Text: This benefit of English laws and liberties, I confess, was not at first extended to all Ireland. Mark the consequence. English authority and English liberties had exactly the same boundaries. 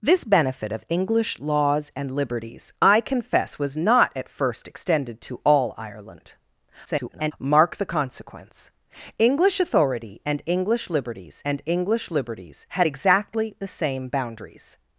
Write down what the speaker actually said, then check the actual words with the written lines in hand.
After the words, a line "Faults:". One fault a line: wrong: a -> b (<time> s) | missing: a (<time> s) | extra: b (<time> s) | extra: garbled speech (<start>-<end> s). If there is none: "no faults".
This benefit of English laws and liberties, I confess, was not at first extended to all Ireland. [garbled] Mark the consequence. English authority and English liberties and English liberties had exactly the same boundaries.
Faults:
extra: garbled speech (6.8-7.3 s)
extra: and English liberties (11.4 s)